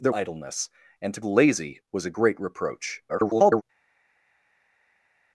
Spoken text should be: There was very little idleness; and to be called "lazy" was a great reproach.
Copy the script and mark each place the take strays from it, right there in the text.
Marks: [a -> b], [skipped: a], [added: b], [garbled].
There [skipped: was very little] idleness; and to [skipped: be called] "lazy" was a great reproach. [garbled]